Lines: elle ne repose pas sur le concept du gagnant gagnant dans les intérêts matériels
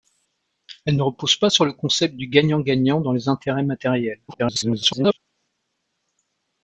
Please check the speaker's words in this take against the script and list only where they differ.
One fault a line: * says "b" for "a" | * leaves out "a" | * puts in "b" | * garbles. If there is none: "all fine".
* garbles